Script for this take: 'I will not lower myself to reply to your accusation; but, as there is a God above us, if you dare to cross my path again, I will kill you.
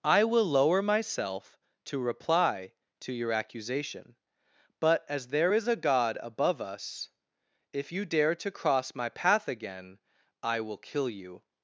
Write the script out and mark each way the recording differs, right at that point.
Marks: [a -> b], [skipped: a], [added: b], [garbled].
'I will [skipped: not] lower myself to reply to your accusation; but, as there is a God above us, if you dare to cross my path again, I will kill you.